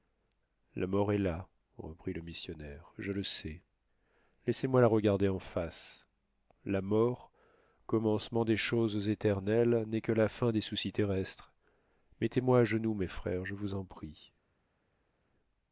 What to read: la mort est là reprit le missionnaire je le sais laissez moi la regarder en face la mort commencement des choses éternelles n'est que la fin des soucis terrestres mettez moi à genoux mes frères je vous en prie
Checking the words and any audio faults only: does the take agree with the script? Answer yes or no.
yes